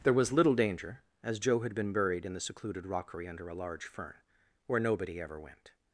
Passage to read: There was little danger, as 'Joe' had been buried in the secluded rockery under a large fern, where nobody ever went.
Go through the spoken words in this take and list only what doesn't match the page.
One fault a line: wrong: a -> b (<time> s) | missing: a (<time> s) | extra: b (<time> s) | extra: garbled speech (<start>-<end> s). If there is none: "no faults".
no faults